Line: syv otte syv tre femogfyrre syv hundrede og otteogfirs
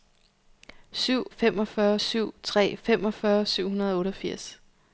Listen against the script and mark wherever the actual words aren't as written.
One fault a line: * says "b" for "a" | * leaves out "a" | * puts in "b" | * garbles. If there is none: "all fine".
* says "femogfyrre" for "otte"